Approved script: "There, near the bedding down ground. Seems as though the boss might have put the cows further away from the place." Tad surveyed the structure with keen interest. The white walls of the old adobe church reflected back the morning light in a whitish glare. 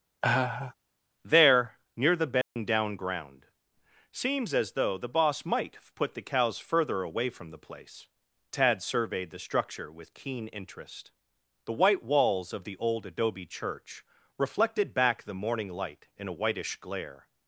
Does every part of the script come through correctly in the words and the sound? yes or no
no